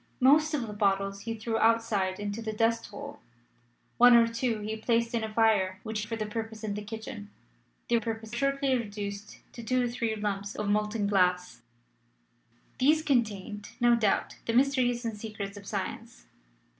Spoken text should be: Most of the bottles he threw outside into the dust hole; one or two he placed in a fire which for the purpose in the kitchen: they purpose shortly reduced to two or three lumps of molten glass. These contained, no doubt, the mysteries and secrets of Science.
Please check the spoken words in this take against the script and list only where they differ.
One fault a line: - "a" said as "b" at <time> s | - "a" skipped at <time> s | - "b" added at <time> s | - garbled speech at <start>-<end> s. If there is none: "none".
none